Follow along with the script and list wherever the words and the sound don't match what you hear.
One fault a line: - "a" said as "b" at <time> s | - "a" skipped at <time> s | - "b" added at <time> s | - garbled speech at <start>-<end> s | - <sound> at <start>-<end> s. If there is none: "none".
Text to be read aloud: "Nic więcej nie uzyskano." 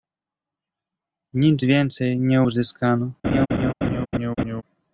- laugh at 3.2-4.6 s